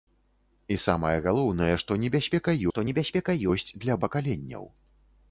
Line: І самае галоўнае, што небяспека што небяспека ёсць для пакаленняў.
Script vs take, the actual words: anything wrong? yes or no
no